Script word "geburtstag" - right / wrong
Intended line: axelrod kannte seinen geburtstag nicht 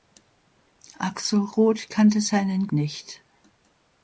wrong